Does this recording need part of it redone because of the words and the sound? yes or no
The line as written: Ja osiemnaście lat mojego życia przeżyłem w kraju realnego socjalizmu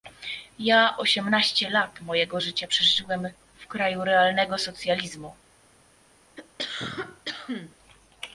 yes